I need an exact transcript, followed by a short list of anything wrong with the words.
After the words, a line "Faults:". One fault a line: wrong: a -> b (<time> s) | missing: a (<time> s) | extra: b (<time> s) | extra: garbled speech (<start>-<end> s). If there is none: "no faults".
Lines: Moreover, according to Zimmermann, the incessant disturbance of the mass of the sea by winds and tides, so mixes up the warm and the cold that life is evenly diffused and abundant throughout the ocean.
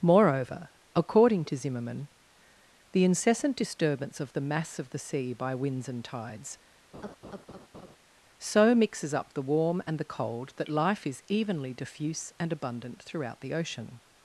Moreover, according to Zimmermann, the incessant disturbance of the mass of the sea by winds and tides, so mixes up the warm and the cold that life is evenly diffuse and abundant throughout the ocean.
Faults:
wrong: diffused -> diffuse (11.7 s)